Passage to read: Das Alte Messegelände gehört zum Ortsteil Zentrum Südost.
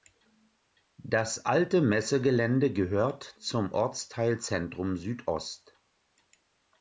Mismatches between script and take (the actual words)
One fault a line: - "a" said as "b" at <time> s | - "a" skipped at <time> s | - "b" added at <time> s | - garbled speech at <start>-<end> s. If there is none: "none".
none